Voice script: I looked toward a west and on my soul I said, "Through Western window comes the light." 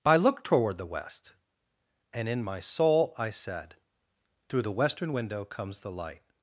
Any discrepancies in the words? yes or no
yes